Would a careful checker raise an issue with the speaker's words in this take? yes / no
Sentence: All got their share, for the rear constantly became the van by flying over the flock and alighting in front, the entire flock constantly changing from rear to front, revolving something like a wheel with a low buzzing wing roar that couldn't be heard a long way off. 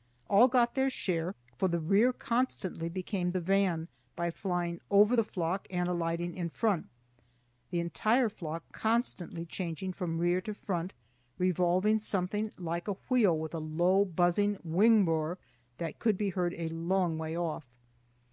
yes